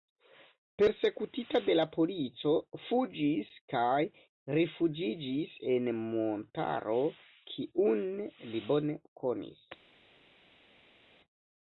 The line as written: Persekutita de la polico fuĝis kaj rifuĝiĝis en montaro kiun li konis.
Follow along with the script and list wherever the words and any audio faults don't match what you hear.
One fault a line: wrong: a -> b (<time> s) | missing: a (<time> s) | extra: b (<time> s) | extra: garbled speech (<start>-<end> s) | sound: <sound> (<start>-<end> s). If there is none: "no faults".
extra: bone (8.7 s)